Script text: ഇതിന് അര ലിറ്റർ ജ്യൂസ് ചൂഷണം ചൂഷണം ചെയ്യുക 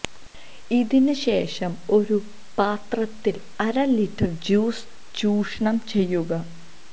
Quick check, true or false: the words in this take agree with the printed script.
false